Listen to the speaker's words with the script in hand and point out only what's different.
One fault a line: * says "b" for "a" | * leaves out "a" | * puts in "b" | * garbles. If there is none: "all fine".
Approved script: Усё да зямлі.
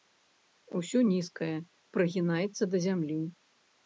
* puts in "нізкае прыгінаецца"